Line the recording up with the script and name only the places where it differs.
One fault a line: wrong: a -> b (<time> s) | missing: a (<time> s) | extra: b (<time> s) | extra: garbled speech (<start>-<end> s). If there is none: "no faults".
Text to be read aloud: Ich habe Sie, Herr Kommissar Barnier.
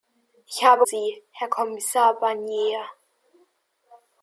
no faults